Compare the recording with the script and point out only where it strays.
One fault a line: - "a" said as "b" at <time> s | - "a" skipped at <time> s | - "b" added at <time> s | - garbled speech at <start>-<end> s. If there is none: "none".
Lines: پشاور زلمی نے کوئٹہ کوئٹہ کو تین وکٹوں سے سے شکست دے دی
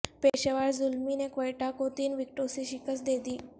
- "کوئٹہ" skipped at 1.7 s
- "سے" skipped at 2.6 s